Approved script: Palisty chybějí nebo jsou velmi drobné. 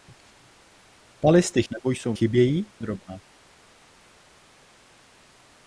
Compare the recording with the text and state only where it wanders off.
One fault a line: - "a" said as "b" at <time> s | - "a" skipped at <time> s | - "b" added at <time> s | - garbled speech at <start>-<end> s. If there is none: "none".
- "chybějí" skipped at 1.6 s
- "velmi" said as "chybějí" at 2.1 s